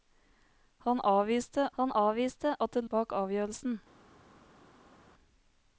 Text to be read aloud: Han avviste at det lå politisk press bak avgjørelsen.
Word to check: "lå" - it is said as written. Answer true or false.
false